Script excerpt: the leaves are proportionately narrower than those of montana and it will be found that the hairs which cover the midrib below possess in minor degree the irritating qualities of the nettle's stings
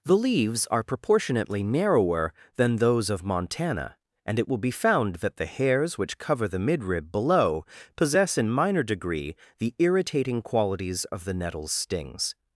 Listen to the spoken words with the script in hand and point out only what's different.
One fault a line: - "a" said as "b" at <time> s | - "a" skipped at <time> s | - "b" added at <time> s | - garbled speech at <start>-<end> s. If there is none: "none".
none